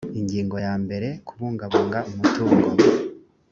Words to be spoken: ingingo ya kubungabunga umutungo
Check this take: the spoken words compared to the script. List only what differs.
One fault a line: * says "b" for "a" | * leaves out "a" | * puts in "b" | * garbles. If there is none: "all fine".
* puts in "mbere"